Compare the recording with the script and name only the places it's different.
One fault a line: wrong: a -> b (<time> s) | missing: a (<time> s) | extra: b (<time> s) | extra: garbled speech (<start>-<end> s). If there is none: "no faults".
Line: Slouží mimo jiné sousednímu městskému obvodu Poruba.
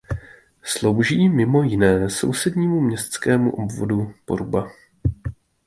no faults